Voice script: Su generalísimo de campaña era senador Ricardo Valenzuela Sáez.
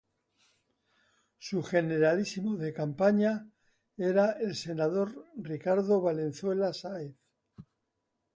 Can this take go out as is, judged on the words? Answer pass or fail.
fail